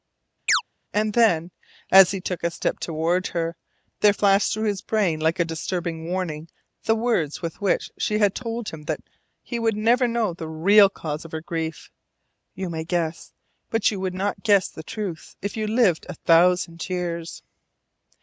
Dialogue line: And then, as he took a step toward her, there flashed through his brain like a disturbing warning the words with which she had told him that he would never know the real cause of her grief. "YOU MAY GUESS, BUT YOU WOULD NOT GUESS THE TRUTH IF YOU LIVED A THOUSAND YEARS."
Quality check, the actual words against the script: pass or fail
pass